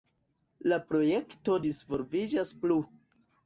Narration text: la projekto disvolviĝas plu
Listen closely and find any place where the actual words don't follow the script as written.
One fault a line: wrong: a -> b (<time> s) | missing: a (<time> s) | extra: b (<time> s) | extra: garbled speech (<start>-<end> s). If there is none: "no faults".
no faults